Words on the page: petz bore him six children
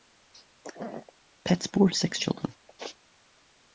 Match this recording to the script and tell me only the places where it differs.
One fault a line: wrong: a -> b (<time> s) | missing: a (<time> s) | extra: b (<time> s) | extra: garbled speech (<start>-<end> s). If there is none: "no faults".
missing: him (1.9 s)